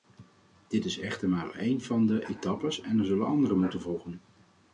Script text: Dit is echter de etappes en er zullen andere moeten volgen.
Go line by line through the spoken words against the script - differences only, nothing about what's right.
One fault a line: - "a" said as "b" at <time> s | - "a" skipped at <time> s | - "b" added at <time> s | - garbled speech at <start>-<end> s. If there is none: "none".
- "maar een van" added at 1.3 s